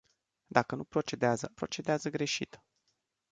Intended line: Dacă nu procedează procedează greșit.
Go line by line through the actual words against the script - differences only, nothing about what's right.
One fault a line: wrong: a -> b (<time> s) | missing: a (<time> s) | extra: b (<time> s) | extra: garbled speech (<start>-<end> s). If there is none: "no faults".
no faults